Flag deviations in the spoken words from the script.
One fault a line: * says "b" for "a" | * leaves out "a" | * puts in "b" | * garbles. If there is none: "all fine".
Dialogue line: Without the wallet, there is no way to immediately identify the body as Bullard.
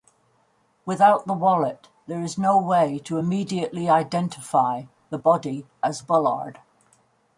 all fine